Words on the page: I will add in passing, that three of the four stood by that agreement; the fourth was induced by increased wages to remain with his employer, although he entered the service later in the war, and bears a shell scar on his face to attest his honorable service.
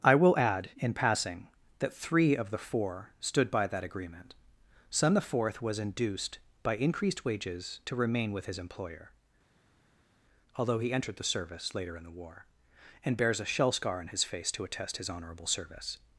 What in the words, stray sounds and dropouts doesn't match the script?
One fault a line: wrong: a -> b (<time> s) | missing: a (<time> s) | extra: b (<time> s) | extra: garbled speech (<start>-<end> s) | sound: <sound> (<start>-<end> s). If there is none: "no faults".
extra: son (4.9 s)